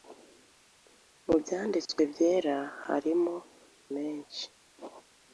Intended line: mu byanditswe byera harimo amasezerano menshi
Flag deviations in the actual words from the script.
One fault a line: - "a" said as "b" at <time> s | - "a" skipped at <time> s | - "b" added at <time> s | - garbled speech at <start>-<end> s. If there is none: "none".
- "amasezerano" skipped at 3.4 s